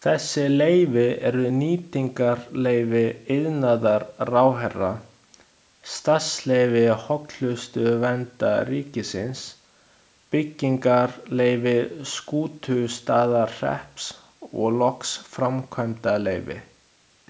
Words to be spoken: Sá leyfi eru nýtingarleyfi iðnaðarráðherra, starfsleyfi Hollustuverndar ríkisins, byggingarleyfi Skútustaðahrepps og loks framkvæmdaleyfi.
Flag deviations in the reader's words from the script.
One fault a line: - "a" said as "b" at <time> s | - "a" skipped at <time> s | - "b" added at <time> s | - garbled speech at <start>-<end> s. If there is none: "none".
- "Sá" said as "Þessi" at 0.0 s